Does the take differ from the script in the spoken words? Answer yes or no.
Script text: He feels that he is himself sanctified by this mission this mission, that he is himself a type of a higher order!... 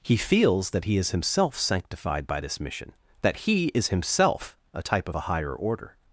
yes